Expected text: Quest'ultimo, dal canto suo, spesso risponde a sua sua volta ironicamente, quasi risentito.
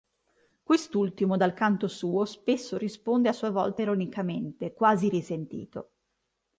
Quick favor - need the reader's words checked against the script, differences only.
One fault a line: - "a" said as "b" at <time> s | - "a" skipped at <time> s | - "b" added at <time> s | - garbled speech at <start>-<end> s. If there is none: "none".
- "sua" skipped at 3.5 s